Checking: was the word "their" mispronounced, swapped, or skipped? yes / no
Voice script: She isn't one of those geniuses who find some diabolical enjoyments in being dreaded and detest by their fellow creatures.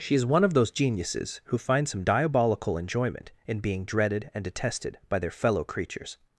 no